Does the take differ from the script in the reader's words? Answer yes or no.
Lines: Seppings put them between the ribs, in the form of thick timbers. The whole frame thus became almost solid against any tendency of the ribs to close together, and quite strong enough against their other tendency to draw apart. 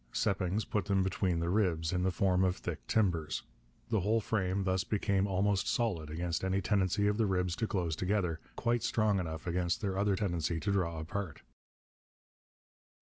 yes